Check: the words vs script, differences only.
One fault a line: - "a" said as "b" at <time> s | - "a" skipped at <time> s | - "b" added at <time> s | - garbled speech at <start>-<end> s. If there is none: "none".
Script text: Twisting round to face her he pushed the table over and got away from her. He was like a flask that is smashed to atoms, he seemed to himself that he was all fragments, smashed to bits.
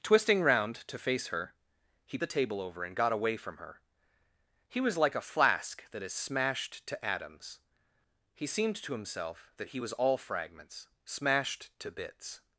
- "pushed" skipped at 2.2 s